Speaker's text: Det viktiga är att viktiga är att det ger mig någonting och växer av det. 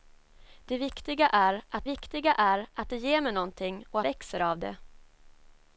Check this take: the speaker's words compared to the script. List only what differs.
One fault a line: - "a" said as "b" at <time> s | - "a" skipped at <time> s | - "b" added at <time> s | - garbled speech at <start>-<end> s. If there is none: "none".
none